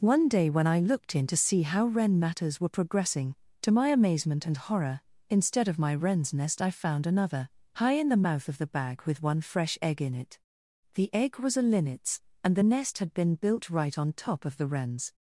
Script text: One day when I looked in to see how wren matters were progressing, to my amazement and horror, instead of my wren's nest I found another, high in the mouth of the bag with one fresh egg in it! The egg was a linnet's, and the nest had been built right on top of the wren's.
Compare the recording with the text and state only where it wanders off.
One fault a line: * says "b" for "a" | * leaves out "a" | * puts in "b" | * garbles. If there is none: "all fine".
all fine